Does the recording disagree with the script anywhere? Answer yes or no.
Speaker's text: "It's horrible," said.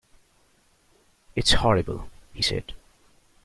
yes